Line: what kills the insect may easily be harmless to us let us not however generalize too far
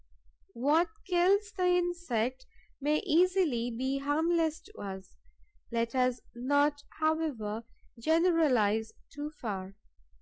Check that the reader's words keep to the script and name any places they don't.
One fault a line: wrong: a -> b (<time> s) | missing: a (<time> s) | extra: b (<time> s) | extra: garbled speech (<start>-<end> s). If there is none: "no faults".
no faults